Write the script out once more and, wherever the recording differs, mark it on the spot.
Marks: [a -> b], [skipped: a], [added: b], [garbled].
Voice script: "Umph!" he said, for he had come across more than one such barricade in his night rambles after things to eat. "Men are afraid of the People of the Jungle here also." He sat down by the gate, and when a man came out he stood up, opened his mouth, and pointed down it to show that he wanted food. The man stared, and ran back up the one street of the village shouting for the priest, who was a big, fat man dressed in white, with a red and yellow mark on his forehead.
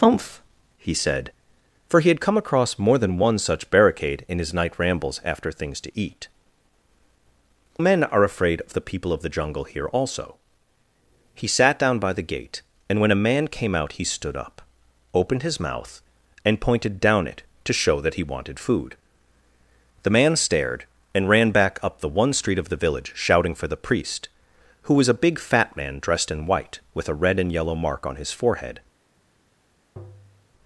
"Umph!" he said, for he had come across more than one such barricade in his night rambles after things to eat. "Men are afraid of the People of the Jungle here also." He sat down by the gate, and when a man came out he stood up, opened his mouth, and pointed down it to show that he wanted food. The man stared, and ran back up the one street of the village shouting for the priest, who was a big, fat man dressed in white, with a red and yellow mark on his forehead.